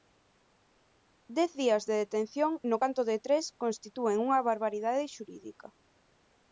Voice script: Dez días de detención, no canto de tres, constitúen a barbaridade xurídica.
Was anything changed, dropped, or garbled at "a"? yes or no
yes